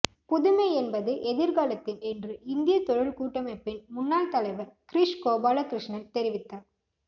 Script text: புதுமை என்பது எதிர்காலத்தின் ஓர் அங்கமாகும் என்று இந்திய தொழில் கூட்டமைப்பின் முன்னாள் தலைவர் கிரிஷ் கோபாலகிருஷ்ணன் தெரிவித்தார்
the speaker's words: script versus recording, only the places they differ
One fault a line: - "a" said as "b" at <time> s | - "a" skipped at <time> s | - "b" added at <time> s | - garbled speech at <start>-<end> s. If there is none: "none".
- "ஓர் அங்கமாகும்" skipped at 2.0 s